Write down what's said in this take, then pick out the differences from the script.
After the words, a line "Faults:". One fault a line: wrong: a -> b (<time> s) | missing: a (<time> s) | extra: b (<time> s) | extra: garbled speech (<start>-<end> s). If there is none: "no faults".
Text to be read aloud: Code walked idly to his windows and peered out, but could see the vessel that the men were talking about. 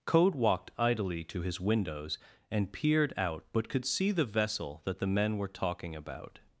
Code walked idly to his windows and peered out, but could see the vessel that the men were talking about.
Faults:
no faults